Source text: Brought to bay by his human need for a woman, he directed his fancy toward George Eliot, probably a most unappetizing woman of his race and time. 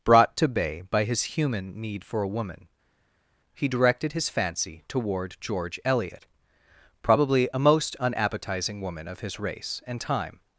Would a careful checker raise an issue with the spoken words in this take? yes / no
no